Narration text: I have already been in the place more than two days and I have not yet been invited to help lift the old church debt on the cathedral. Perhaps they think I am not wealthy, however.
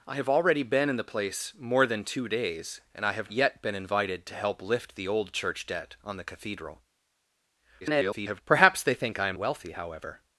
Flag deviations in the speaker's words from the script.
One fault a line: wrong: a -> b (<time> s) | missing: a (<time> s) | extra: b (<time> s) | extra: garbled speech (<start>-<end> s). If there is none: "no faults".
missing: not (3.3 s)
extra: garbled speech (7.8-8.4 s)
missing: not (9.4 s)